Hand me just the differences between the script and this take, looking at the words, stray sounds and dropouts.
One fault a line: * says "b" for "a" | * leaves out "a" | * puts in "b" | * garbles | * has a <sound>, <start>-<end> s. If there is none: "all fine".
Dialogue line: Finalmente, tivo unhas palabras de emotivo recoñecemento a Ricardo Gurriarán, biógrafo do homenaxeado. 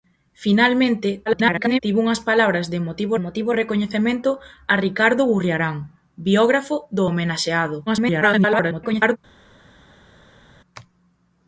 * garbles
* puts in "emotivo"
* garbles